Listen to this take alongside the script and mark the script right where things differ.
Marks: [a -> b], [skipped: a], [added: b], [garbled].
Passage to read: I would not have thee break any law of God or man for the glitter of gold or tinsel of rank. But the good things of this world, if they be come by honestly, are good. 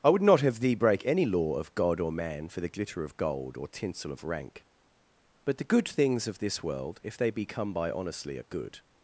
I would not have thee break any law of God or man for the glitter of gold or tinsel of rank. But the good things of this world, if they be come by honestly, are good.